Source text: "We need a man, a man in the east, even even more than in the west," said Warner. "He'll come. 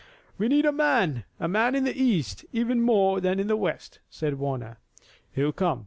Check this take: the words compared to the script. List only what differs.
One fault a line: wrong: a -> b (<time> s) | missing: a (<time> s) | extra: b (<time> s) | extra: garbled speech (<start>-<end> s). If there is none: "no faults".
missing: even (2.8 s)